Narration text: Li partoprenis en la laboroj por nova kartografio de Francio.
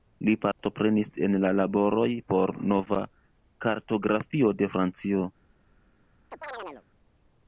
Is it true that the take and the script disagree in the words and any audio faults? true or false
true